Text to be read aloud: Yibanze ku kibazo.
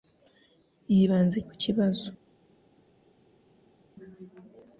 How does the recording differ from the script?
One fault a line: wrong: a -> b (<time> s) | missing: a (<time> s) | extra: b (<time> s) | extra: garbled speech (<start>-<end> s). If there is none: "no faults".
no faults